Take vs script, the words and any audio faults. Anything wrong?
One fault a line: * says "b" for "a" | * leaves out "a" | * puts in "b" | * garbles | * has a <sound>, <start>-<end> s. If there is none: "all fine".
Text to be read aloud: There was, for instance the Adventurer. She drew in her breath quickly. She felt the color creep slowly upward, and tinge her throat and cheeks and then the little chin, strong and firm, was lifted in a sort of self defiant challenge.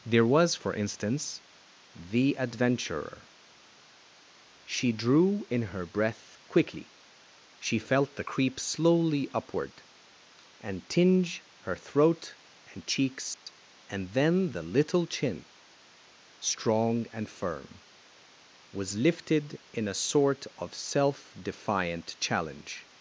* leaves out "color"
* has a dropout, 13.3-13.5 s